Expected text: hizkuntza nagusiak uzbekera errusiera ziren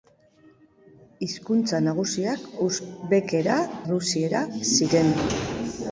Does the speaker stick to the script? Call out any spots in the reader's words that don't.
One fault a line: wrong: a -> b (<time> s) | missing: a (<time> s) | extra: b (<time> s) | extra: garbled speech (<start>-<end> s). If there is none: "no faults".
no faults